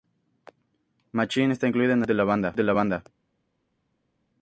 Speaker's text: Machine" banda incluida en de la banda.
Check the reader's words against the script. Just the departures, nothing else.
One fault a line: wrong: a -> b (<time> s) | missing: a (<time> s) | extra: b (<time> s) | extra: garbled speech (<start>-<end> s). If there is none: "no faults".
wrong: banda -> está (1.5 s)
extra: el álbum debut (2.0 s)